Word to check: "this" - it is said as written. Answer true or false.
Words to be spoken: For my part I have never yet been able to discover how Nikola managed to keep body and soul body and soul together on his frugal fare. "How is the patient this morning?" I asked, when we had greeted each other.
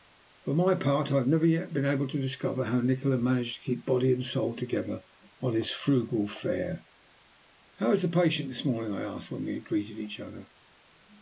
true